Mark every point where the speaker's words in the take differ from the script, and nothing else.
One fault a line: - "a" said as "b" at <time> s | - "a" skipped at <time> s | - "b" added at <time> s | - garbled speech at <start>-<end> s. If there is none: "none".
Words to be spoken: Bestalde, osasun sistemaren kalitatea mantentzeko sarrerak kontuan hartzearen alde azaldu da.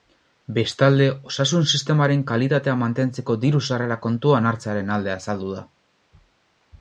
- "diru" added at 3.4 s